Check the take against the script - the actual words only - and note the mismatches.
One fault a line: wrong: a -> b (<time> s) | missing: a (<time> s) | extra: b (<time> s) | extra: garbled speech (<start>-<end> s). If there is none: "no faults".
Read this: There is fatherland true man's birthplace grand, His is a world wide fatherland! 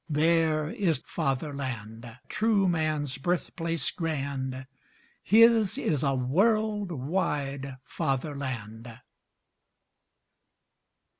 no faults